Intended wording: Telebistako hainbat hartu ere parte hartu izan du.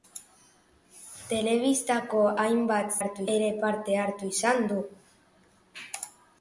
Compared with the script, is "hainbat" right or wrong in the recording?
right